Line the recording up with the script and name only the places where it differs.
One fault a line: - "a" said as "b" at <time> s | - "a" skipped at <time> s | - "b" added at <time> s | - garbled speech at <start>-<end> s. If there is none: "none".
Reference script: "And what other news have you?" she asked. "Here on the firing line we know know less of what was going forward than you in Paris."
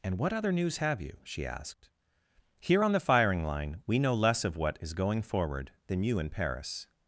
- "know" skipped at 4.1 s
- "was" said as "is" at 4.8 s